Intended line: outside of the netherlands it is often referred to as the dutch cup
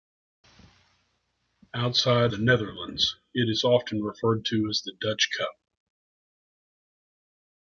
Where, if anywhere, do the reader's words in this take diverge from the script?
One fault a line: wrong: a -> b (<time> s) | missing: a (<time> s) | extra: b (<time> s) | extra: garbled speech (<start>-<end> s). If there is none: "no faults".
missing: of (2.3 s)